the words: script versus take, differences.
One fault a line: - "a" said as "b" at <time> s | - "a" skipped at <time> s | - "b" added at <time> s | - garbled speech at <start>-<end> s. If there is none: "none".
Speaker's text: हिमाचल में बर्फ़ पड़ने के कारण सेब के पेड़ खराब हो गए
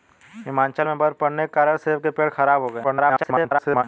- garbled speech at 2.8-3.8 s